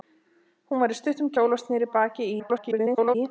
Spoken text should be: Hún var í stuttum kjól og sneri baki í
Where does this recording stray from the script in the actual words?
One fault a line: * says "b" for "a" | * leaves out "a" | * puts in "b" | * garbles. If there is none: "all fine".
* garbles